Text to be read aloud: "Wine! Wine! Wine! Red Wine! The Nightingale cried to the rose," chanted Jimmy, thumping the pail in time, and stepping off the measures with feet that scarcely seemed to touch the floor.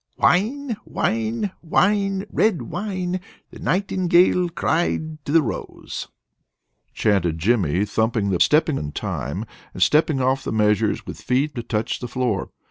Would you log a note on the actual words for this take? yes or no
yes